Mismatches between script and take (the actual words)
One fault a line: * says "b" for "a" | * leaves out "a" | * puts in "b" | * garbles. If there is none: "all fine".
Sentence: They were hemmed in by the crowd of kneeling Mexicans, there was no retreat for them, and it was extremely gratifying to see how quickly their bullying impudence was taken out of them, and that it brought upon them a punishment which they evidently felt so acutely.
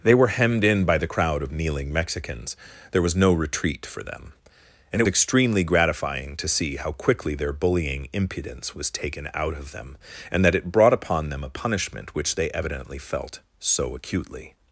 * leaves out "was"